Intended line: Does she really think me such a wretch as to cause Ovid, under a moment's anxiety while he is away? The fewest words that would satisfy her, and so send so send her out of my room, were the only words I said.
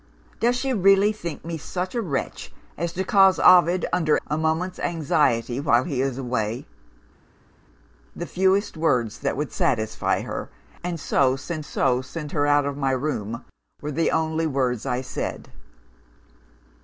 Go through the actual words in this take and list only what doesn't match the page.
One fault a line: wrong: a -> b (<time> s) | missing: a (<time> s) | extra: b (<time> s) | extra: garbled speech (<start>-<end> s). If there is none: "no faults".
no faults